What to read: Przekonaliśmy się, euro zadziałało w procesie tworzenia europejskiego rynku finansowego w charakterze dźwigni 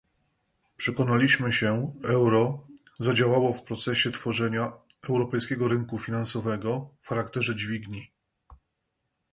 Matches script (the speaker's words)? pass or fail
pass